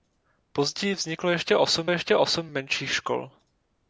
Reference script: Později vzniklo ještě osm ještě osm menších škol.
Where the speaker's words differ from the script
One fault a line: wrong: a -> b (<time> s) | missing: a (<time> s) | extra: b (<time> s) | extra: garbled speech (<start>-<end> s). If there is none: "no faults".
no faults